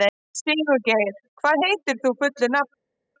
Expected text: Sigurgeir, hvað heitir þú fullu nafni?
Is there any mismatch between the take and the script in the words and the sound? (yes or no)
no